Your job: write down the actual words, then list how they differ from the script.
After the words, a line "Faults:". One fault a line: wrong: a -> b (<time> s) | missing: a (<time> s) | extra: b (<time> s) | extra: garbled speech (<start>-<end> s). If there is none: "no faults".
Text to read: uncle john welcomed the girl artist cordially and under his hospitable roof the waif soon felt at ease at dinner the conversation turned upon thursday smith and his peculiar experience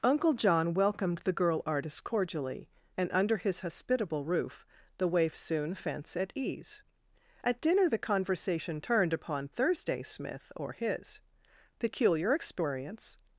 uncle john welcomed the girl artist cordially and under his hospitable roof the waif soon fence at ease at dinner the conversation turned upon thursday smith or his peculiar experience
Faults:
wrong: felt -> fence (5.7 s)
wrong: and -> or (10.5 s)